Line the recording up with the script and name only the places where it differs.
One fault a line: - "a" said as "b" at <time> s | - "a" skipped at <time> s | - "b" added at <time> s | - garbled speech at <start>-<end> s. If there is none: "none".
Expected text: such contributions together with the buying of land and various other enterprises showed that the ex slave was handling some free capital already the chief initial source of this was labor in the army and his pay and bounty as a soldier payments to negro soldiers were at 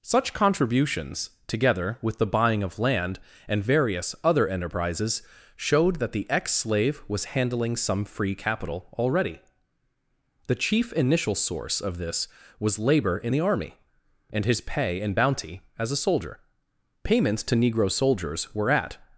none